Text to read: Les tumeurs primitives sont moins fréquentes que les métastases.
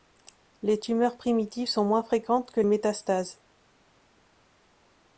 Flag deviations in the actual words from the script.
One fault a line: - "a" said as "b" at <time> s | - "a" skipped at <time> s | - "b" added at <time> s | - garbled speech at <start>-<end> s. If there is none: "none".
- "les" skipped at 2.6 s